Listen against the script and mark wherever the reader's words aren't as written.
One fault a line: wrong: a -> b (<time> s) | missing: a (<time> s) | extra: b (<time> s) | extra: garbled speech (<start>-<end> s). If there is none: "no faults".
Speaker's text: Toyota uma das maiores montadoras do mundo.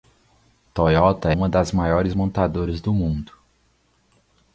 no faults